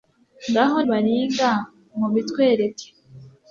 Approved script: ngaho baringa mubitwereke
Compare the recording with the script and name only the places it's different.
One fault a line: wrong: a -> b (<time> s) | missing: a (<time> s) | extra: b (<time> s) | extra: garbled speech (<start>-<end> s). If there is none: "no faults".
no faults